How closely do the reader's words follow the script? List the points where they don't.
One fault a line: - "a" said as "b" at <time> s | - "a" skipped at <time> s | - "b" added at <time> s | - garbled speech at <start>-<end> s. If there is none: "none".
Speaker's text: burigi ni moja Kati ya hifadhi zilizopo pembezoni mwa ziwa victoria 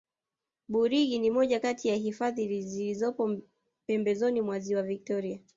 none